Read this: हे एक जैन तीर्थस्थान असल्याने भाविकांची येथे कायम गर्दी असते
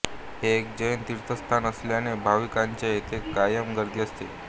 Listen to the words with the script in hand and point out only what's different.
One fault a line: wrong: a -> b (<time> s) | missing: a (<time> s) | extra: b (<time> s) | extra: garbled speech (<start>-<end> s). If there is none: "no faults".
no faults